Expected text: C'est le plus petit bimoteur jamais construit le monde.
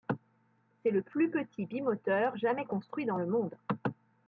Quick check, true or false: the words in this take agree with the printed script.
false